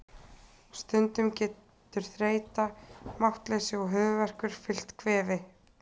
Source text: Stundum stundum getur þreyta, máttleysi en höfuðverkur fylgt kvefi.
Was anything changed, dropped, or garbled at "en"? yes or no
yes